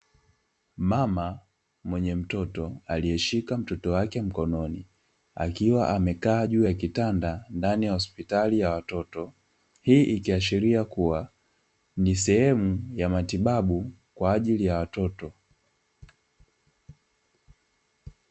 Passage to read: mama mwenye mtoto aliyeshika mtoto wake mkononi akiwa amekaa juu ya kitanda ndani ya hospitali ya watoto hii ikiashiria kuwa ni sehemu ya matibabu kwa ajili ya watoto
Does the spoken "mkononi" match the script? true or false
true